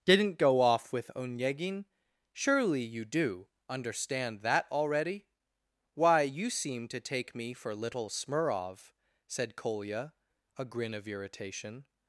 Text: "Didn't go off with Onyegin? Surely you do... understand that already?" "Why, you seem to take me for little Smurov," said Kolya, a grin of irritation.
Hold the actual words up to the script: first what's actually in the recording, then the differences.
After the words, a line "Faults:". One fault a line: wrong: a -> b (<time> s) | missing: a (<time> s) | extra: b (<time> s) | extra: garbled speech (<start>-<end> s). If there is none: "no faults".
"Didn't go off with Onyegin? Surely you do... understand that already?" "Why, you seem to take me for little Smurov," said Kolya, a grin of irritation.
Faults:
no faults